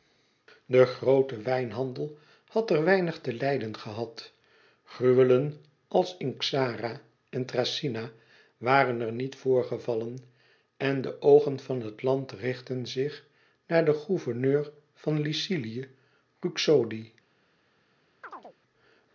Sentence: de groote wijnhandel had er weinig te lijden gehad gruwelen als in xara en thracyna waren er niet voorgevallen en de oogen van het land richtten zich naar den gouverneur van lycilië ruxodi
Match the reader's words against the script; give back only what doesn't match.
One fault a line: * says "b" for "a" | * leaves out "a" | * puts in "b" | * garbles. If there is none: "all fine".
all fine